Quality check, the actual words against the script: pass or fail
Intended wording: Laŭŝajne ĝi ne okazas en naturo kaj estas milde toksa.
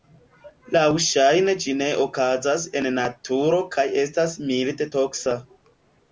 pass